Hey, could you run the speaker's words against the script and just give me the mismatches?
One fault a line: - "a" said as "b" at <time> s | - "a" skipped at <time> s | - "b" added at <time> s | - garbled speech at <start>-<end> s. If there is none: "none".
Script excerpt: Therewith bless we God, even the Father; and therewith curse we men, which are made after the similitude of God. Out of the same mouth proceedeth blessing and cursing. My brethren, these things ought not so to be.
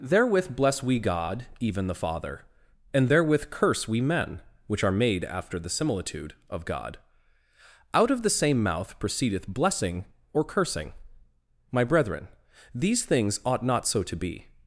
- "and" said as "or" at 10.3 s